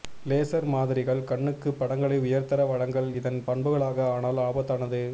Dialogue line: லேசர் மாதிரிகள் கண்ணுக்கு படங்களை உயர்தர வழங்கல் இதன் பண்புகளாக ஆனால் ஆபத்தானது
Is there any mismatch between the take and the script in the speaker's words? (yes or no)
no